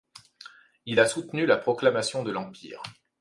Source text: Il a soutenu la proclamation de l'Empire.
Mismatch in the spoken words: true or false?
false